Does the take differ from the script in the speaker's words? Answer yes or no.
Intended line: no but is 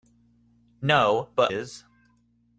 no